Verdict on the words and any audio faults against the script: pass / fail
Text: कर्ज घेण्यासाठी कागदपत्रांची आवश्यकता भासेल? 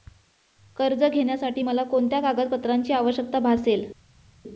fail